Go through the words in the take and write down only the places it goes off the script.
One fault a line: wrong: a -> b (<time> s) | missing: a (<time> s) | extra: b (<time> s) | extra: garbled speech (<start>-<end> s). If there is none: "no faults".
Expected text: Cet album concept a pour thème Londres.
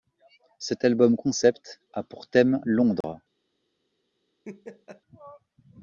no faults